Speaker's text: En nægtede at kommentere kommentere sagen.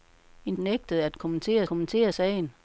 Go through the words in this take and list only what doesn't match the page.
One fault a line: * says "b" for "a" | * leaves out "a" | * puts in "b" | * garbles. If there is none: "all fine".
all fine